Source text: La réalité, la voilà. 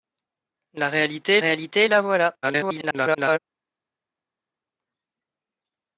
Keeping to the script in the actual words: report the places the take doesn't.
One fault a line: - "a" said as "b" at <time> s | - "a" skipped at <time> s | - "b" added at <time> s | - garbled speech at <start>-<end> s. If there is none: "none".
- "réalité" added at 1.4 s
- garbled speech at 2.4-3.4 s